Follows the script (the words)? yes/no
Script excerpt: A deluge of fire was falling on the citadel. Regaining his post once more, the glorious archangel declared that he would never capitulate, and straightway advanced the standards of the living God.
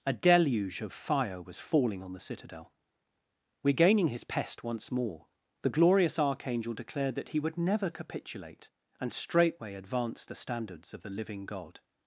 no